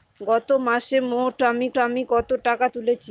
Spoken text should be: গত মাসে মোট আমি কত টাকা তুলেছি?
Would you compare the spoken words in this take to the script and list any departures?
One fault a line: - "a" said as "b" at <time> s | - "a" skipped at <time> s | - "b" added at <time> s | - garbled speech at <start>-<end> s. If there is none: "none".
- "আমি" added at 1.8 s